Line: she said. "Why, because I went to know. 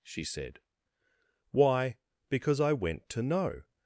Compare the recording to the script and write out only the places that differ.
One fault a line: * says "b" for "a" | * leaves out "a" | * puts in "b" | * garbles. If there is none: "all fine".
all fine